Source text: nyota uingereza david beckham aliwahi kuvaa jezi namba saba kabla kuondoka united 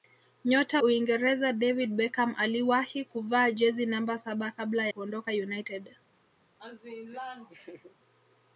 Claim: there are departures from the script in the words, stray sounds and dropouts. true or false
true